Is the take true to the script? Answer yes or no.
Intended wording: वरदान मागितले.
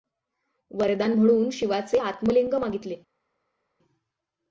no